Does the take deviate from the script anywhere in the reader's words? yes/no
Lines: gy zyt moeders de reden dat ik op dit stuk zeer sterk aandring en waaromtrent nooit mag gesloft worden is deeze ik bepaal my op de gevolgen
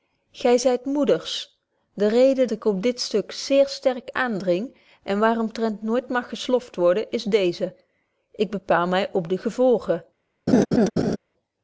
yes